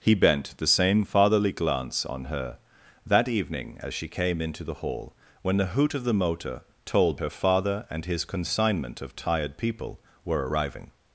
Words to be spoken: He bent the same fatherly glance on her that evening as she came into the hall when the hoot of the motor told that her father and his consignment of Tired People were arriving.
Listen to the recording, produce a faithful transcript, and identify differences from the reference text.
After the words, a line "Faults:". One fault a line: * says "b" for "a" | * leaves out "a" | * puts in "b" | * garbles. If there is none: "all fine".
He bent the same fatherly glance on her that evening as she came into the hall when the hoot of the motor told her father and his consignment of Tired People were arriving.
Faults:
* leaves out "that"